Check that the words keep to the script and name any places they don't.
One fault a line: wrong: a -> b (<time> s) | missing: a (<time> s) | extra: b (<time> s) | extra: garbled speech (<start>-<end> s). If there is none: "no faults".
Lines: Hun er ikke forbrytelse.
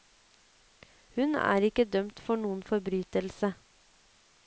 extra: dømt for noen (2.0 s)